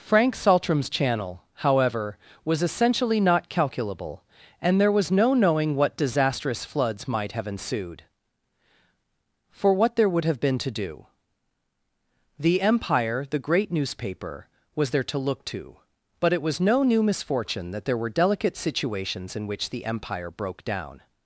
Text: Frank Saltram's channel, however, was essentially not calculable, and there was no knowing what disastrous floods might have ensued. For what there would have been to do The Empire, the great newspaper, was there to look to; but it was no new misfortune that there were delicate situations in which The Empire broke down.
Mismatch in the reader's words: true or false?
false